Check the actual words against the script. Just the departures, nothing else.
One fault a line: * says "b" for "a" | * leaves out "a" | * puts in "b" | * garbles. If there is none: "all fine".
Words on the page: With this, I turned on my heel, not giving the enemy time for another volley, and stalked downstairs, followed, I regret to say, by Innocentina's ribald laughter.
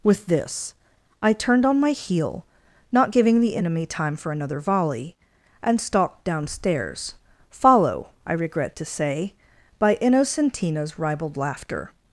* says "follow" for "followed"